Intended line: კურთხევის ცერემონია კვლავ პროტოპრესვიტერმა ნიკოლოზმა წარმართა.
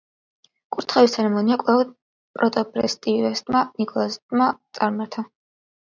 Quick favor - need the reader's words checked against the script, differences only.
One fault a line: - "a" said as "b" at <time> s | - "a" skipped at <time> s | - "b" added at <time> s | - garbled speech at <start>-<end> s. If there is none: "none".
none